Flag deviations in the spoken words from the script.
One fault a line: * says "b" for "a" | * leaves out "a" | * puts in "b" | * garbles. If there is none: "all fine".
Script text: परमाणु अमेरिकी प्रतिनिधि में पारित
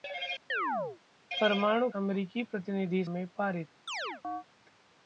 all fine